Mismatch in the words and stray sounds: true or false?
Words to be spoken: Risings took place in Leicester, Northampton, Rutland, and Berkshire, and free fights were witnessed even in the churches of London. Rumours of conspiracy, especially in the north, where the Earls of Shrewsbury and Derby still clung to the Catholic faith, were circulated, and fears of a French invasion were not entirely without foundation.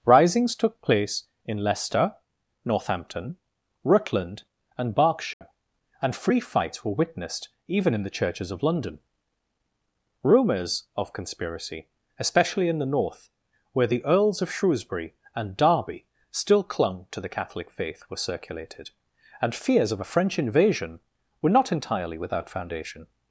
true